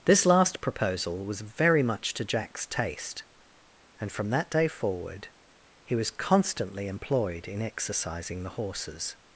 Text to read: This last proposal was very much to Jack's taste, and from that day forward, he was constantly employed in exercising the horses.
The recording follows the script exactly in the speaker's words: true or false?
true